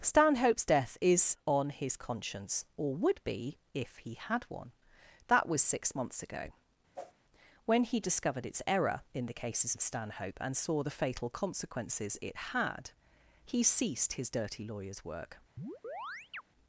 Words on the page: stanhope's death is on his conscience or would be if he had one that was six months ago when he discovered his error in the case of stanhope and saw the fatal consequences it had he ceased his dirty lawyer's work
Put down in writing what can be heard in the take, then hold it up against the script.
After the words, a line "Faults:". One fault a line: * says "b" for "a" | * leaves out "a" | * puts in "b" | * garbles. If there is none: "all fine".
stanhope's death is on his conscience or would be if he had one that was six months ago when he discovered its error in the cases of stanhope and saw the fatal consequences it had he ceased his dirty lawyer's work
Faults:
* says "its" for "his"
* says "cases" for "case"